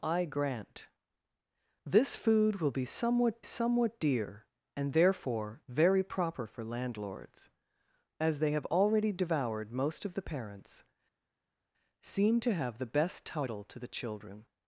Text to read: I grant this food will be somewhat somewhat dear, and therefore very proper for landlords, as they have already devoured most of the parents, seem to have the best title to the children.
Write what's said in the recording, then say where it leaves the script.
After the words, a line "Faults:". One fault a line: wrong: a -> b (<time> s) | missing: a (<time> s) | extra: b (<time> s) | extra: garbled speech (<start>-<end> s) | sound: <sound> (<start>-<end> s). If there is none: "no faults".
I grant this food will be somewhat somewhat dear, and therefore very proper for landlords, as they have already devoured most of the parents, seem to have the best title to the children.
Faults:
no faults